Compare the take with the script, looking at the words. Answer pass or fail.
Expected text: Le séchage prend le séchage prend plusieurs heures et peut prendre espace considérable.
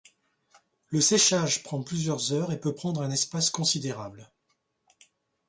fail